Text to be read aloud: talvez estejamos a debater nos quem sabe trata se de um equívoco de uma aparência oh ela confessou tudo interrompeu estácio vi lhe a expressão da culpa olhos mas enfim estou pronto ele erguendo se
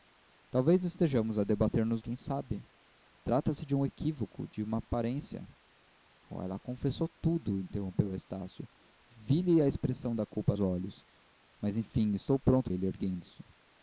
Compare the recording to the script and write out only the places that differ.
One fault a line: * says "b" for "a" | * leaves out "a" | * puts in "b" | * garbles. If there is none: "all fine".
all fine